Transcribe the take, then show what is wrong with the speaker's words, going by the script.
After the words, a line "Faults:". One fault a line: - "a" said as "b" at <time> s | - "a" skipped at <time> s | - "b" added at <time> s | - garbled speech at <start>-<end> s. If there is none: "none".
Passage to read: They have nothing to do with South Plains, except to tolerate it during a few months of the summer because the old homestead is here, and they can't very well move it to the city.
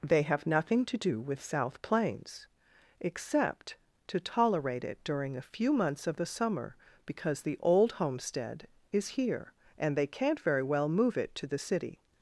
They have nothing to do with South Plains, except to tolerate it during a few months of the summer because the old homestead is here, and they can't very well move it to the city.
Faults:
none